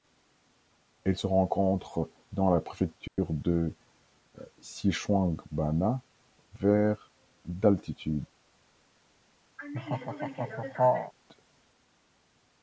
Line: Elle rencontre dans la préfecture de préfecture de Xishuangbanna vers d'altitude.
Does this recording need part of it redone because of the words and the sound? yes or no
yes